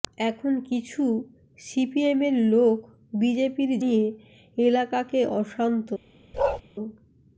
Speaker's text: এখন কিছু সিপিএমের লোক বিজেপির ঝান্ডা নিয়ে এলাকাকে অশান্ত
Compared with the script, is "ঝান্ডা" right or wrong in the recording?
wrong